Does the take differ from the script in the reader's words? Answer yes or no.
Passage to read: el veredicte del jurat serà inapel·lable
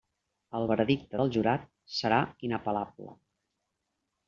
no